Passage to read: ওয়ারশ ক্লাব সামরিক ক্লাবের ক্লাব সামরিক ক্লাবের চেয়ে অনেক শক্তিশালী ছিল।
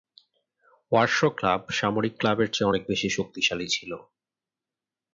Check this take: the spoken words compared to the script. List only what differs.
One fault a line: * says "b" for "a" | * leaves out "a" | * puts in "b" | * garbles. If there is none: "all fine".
* leaves out "ক্লাব সামরিক ক্লাবের"
* puts in "বেশি"